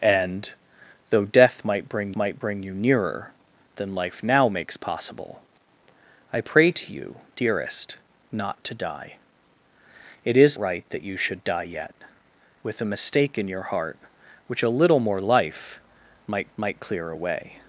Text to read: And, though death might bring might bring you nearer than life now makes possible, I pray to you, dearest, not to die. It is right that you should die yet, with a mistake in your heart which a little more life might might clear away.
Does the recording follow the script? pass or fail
pass